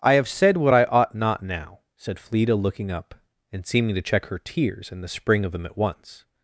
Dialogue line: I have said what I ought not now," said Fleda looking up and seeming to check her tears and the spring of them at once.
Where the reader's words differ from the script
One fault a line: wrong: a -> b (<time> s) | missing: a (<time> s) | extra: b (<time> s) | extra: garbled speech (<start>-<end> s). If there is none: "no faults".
no faults